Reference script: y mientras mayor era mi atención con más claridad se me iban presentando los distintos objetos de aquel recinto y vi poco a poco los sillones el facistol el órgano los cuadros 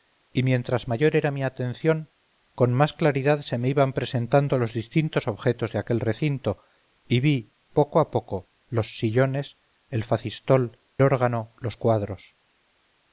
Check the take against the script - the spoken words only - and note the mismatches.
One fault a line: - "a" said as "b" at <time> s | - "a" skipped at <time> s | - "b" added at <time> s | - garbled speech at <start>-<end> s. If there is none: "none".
- "el" skipped at 10.8 s